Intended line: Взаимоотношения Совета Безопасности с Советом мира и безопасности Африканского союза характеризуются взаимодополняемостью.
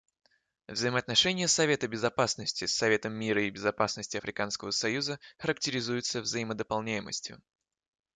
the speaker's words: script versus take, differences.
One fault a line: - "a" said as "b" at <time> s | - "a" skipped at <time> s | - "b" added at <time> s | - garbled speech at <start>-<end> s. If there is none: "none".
none